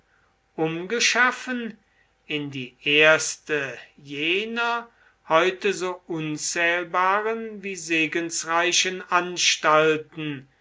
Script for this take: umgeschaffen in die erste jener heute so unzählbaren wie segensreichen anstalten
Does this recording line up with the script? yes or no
yes